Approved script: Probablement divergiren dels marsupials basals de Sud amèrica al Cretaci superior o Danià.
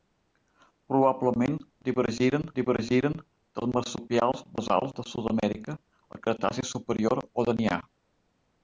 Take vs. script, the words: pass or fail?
fail